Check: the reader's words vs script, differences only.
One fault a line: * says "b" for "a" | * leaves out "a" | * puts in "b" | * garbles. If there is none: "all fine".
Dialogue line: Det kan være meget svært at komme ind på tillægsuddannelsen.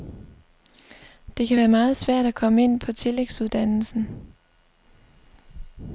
all fine